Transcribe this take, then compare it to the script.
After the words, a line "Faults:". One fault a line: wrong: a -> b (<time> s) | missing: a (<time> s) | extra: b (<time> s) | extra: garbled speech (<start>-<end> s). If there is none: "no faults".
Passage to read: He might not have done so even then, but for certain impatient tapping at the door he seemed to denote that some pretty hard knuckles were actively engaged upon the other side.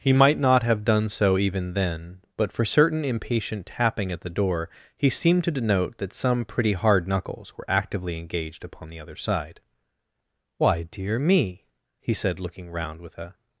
He might not have done so even then, but for certain impatient tapping at the door he seemed to denote that some pretty hard knuckles were actively engaged upon the other side. 'Why dear me!' he said looking round with a
Faults:
extra: Why dear me he said looking round with a (10.6 s)